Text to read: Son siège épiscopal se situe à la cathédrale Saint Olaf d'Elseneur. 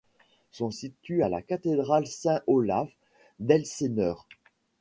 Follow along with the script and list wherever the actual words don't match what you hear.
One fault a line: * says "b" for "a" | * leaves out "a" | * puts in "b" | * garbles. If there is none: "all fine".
* leaves out "siège épiscopal se"